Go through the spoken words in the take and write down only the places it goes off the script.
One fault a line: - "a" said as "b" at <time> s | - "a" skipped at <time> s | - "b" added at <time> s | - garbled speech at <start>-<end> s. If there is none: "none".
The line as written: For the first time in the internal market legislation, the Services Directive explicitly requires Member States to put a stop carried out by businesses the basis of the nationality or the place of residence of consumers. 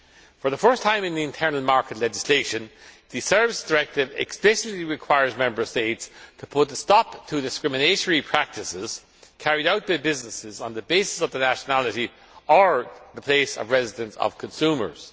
- "to discriminatory practices" added at 7.3 s
- "on" added at 10.6 s